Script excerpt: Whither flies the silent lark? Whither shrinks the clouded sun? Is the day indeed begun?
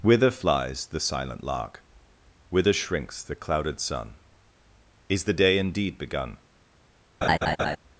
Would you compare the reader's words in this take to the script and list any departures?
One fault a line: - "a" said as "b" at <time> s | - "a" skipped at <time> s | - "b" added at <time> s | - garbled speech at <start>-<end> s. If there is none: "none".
none